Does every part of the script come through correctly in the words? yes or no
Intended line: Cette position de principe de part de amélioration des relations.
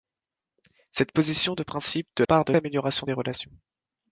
yes